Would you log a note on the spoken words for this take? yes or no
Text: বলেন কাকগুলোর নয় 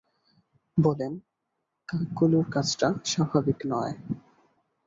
yes